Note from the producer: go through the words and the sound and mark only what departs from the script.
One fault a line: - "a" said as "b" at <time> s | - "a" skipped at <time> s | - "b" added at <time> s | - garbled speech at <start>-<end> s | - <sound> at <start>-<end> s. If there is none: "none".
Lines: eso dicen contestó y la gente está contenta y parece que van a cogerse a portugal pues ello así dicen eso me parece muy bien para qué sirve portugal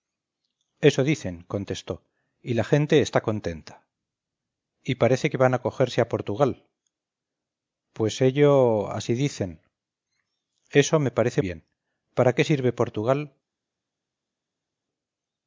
- "muy" skipped at 11.4 s